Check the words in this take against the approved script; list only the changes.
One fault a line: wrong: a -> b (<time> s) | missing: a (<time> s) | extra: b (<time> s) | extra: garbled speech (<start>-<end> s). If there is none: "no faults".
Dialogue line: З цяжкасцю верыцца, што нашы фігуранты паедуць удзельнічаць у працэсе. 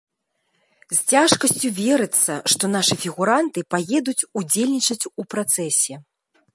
no faults